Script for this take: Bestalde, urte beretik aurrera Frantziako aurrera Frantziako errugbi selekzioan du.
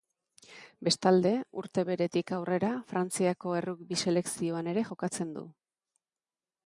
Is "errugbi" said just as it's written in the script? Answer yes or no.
no